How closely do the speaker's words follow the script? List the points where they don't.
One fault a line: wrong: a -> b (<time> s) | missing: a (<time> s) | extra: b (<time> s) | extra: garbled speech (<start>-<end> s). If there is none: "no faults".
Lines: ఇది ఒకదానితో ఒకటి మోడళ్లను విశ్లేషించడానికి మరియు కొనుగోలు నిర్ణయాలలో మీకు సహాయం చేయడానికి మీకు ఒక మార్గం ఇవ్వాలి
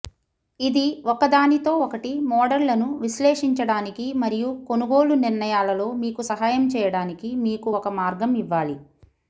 no faults